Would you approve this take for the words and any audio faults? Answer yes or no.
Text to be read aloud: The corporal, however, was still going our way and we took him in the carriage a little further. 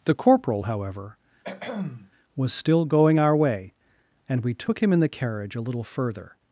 no